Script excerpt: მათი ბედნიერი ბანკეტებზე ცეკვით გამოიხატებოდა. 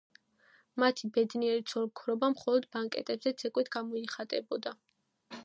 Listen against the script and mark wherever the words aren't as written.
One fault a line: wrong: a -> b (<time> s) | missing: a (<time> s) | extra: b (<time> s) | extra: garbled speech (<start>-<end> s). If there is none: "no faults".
extra: ცოლ ქმრობა მხოლოდ (1.7 s)